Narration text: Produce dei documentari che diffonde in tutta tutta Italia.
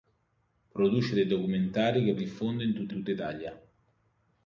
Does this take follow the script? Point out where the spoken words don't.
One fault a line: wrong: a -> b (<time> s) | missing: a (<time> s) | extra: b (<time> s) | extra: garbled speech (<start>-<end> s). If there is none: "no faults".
no faults